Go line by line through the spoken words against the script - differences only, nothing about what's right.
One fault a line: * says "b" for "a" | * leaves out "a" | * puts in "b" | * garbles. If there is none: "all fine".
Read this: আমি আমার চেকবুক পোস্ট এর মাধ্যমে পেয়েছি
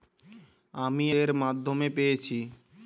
* leaves out "আমার চেকবুক পোস্ট"